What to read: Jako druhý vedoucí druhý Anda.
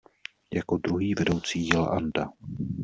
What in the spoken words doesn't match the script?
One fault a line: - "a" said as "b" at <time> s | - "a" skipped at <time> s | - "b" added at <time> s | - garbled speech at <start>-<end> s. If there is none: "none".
- "druhý" said as "jela" at 1.7 s